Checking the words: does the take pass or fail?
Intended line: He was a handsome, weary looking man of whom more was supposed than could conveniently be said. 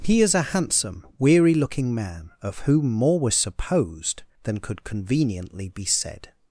fail